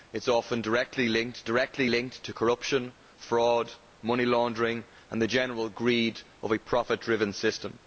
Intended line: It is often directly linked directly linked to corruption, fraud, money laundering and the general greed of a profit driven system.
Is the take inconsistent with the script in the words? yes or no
no